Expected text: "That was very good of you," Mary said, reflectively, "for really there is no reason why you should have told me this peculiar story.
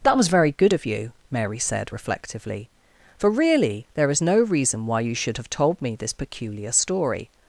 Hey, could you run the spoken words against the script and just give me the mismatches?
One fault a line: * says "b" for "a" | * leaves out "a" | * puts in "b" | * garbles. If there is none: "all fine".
all fine